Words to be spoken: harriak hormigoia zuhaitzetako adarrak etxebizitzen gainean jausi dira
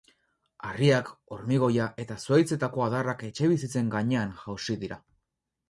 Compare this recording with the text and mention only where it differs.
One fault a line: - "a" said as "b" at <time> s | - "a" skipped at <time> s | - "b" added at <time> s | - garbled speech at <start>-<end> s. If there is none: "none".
- "eta" added at 2.0 s